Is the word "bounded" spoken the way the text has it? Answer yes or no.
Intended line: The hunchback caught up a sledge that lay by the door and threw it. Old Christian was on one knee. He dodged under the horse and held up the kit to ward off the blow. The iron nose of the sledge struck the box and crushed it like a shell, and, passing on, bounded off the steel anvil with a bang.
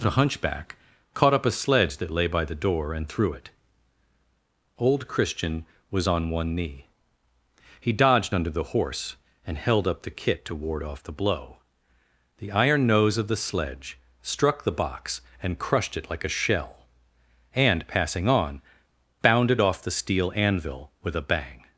yes